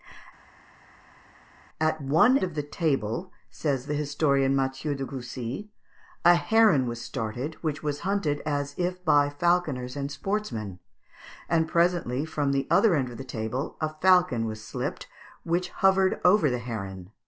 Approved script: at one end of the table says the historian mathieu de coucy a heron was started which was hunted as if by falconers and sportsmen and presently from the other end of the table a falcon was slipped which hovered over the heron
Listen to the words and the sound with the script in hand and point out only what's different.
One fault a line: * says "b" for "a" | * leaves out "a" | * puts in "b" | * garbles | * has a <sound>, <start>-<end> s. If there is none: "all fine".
* leaves out "end"